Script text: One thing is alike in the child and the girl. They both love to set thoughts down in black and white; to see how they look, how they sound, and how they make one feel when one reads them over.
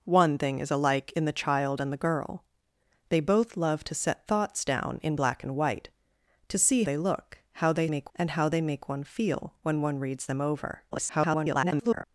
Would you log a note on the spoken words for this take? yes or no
yes